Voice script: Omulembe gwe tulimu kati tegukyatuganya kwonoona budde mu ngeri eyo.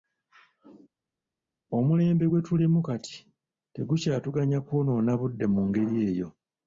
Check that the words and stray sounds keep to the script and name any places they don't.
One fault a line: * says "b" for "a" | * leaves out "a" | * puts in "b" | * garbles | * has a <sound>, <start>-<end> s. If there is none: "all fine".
all fine